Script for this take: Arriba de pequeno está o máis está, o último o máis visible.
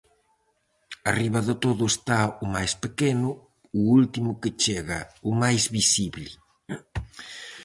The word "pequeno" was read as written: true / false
false